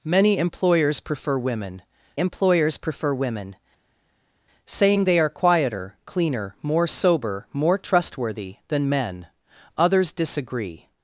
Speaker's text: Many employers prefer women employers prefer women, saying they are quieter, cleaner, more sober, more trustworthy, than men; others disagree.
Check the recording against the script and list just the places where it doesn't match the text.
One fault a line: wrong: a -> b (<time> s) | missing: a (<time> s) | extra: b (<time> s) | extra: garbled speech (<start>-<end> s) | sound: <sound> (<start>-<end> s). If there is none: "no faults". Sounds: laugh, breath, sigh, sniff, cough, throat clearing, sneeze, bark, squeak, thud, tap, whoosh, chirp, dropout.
no faults